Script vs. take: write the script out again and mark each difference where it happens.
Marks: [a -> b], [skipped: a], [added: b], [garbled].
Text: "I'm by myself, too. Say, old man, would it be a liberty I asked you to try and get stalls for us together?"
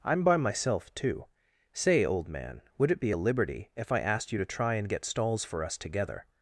"I'm by myself, too. Say, old man, would it be a liberty [added: if] I asked you to try and get stalls for us together?"